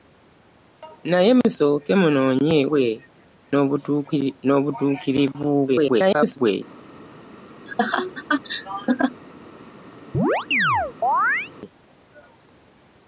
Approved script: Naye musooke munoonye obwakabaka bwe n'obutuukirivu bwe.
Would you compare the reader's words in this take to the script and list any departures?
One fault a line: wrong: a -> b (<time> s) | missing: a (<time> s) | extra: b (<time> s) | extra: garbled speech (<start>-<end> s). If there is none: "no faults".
missing: obwakabaka (2.6 s)
extra: garbled speech (5.7-6.4 s)